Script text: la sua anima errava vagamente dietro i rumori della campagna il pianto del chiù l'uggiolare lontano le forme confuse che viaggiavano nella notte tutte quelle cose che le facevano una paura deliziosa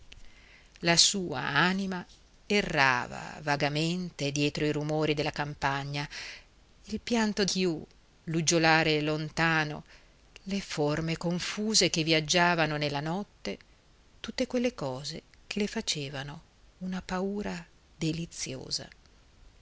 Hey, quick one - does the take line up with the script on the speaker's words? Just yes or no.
no